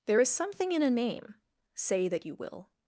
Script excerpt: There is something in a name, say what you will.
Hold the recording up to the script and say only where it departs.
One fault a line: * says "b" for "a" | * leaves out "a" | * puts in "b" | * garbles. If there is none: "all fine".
* says "that" for "what"